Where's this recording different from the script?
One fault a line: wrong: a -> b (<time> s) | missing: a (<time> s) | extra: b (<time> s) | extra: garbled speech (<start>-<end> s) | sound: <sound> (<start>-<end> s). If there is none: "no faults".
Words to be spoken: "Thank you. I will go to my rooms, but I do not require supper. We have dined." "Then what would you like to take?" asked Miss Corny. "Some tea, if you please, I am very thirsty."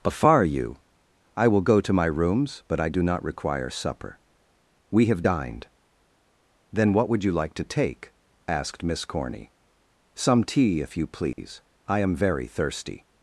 wrong: Thank -> Afar (0.0 s)
sound: dropout (11.3-11.4 s)